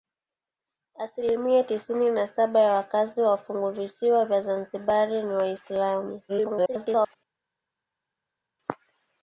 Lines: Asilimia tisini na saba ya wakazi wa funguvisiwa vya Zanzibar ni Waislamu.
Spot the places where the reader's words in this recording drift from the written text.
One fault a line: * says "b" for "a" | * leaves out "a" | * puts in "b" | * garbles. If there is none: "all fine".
* garbles